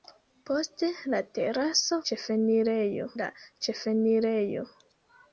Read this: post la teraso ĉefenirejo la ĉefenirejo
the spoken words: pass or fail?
pass